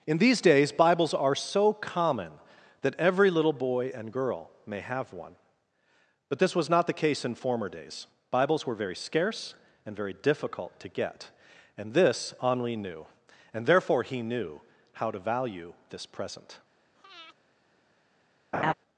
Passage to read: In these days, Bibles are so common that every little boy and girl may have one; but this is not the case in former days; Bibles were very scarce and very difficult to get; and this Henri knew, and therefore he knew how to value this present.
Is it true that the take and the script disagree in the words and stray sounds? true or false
true